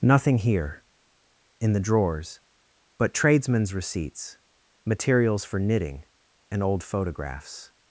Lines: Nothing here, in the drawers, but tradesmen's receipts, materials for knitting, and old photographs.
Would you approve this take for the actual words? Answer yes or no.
yes